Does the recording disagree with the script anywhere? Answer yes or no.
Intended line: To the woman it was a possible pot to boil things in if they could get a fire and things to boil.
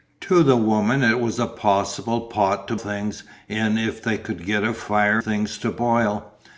yes